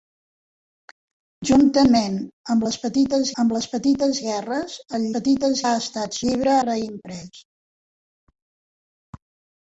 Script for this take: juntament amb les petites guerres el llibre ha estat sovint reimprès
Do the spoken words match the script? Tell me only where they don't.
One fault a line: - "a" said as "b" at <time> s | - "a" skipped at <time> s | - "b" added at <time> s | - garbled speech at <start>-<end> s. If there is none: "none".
- "amb les petites" added at 3.4 s
- "llibre" said as "petites" at 5.1 s
- "sovint" said as "llibre" at 6.3 s